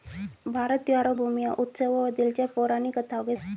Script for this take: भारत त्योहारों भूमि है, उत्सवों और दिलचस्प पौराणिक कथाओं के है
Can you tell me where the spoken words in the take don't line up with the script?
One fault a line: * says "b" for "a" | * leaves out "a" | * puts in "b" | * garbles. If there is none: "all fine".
all fine